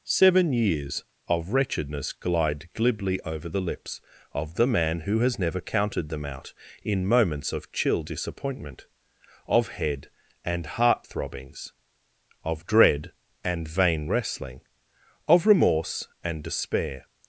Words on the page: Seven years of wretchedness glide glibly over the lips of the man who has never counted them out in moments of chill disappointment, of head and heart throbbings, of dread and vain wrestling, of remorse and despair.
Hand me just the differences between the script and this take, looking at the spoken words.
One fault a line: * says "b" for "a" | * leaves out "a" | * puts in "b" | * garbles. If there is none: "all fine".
all fine